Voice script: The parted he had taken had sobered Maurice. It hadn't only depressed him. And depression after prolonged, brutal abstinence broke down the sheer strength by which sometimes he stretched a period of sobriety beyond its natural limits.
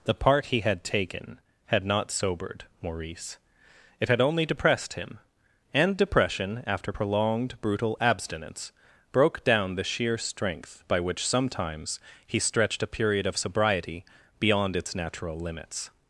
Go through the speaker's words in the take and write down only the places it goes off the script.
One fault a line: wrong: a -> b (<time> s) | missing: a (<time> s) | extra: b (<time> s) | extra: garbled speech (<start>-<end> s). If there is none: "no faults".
wrong: parted -> part (0.1 s)
extra: not (1.8 s)
wrong: hadn't -> had (4.1 s)